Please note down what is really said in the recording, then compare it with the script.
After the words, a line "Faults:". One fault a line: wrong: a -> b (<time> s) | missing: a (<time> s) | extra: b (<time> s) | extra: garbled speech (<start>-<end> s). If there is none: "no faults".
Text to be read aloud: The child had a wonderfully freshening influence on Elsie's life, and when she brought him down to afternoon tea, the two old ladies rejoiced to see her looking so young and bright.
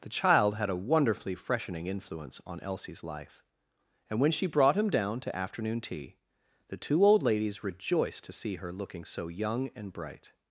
The child had a wonderfully freshening influence on Elsie's life, and when she brought him down to afternoon tea, the two old ladies rejoiced to see her looking so young and bright.
Faults:
no faults